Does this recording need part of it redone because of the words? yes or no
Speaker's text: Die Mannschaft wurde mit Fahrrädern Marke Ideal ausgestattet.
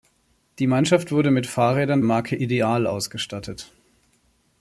no